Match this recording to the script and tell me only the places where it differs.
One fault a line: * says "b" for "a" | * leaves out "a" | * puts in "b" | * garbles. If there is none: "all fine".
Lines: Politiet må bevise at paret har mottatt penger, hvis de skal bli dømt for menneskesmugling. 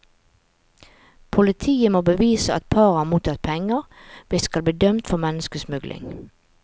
* leaves out "de"